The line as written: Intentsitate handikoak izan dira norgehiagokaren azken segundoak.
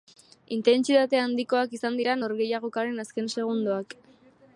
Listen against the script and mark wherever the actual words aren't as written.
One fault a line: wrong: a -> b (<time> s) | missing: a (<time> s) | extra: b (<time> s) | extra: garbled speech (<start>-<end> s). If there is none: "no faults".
no faults